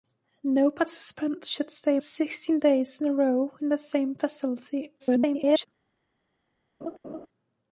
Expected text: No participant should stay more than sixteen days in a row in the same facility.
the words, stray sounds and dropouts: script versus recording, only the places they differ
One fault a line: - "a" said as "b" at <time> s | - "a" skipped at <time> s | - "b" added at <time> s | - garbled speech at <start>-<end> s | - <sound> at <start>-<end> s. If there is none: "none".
- "more than" skipped at 2.0 s
- garbled speech at 5.0-5.7 s
- laugh at 6.8-7.3 s